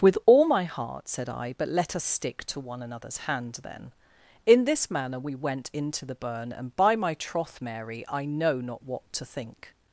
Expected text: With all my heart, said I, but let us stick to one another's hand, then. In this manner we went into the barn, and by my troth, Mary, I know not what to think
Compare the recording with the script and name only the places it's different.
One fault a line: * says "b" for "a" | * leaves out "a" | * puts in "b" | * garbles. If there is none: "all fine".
* says "burn" for "barn"